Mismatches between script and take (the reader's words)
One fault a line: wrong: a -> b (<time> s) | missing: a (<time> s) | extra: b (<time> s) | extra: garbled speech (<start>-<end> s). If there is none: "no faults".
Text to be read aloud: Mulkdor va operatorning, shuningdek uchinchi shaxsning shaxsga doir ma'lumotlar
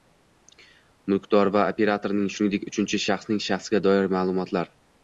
no faults